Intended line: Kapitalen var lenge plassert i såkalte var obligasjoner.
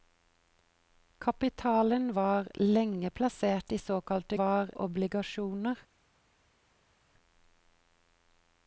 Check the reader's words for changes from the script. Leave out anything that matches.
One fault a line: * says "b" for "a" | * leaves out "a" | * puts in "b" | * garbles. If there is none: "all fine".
all fine